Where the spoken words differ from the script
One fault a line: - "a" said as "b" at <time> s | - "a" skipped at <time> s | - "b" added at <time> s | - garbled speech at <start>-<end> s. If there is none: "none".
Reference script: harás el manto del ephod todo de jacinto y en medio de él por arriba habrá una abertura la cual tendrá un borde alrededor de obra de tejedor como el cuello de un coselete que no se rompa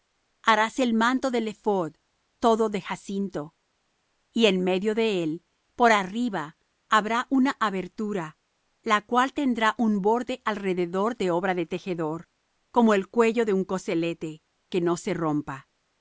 none